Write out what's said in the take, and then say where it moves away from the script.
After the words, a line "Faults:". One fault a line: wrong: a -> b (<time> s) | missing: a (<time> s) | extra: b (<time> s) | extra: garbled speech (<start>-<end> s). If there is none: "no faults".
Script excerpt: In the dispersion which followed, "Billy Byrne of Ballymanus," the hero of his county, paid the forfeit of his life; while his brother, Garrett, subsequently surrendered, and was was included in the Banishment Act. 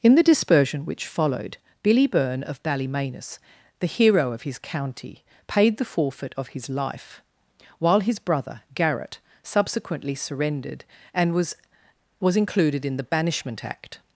In the dispersion which followed, "Billy Byrne of Ballymanus," the hero of his county, paid the forfeit of his life; while his brother, Garrett, subsequently surrendered, and was was included in the Banishment Act.
Faults:
no faults